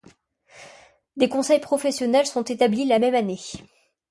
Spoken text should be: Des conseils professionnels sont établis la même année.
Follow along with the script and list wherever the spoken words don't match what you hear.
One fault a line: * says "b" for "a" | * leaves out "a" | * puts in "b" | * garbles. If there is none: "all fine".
all fine